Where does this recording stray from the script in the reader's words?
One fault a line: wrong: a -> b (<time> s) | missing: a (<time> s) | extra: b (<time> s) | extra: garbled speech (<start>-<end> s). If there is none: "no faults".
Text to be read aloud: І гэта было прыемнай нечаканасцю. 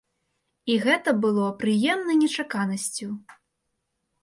no faults